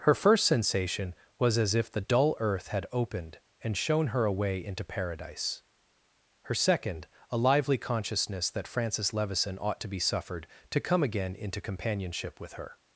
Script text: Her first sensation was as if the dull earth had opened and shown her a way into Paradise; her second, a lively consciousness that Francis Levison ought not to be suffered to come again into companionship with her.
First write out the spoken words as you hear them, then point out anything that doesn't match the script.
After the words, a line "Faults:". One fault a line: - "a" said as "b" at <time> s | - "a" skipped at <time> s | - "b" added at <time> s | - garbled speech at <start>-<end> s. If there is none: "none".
Her first sensation was as if the dull earth had opened and shown her a way into Paradise; her second, a lively consciousness that Francis Levison ought to be suffered to come again into companionship with her.
Faults:
- "not" skipped at 9.8 s